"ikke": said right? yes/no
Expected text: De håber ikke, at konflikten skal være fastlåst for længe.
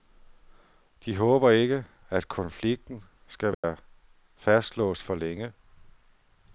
yes